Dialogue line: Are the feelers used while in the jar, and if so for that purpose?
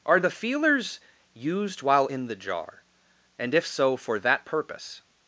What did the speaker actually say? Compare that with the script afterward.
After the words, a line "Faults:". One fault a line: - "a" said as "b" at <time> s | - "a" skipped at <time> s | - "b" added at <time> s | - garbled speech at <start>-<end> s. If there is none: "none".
Are the feelers used while in the jar, and if so for that purpose?
Faults:
none